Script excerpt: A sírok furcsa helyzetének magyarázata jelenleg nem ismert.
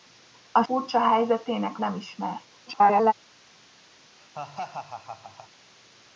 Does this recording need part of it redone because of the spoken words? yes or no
yes